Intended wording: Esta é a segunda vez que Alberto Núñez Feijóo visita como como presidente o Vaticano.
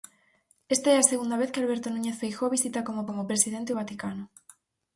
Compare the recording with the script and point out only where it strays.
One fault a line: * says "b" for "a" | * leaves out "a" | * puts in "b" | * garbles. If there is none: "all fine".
all fine